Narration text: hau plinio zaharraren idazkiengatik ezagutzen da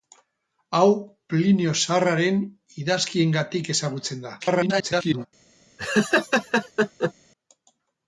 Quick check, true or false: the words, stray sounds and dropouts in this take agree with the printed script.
false